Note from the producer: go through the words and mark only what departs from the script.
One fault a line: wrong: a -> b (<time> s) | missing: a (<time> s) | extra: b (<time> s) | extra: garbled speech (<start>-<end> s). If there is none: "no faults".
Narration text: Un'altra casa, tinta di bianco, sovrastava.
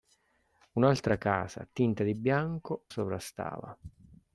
no faults